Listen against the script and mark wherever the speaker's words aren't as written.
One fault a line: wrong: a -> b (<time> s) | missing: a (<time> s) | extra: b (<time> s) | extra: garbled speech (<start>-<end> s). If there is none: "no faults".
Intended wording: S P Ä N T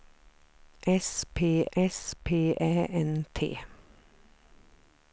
extra: s P (1.8 s)